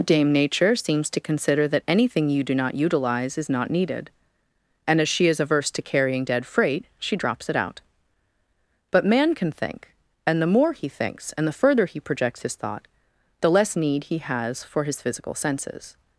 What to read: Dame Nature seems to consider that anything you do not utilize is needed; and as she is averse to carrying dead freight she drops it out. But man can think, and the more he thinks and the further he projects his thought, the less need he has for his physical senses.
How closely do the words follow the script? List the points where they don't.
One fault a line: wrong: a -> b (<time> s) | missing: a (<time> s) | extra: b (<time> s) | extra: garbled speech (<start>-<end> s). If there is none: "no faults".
extra: not (3.5 s)